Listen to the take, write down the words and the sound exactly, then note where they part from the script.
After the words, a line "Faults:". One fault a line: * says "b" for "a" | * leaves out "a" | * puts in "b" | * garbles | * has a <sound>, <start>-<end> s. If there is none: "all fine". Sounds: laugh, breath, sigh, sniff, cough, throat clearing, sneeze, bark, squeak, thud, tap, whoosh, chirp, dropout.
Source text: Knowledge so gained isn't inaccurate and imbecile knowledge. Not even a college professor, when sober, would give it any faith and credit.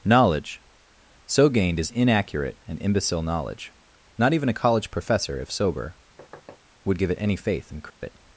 Knowledge so gained is inaccurate and imbecile knowledge. Not even a college professor, if sober, would give it any faith and credit.
Faults:
* says "is" for "isn't"
* says "if" for "when"
* has a thud, 6.2-6.6 s
* has a dropout, 7.9-8.0 s